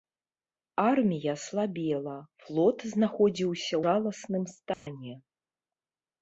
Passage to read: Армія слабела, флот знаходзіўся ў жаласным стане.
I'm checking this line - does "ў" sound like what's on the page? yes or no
no